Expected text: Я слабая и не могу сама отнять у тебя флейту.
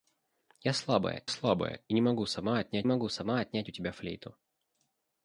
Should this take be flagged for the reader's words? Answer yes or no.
yes